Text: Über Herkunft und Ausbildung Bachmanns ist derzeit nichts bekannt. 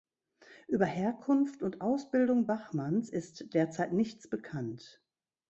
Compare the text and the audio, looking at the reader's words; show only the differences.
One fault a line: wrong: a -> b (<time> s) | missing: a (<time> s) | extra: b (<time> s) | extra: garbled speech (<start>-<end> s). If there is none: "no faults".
no faults